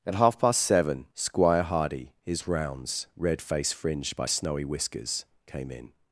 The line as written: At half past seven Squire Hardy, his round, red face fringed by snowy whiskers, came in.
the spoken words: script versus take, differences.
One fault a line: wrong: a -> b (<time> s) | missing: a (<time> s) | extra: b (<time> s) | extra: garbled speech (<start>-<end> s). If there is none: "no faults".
wrong: round -> rounds (2.5 s)